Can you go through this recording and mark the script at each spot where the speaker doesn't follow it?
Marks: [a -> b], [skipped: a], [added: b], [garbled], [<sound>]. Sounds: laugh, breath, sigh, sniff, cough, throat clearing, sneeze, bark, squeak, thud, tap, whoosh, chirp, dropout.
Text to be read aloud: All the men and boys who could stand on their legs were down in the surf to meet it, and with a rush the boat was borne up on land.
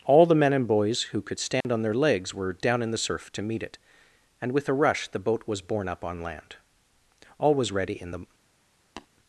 All the men and boys who could stand [dropout] on their legs were down in the surf to meet it, and with a rush the boat was borne up on land. [added: All was ready in the] [tap]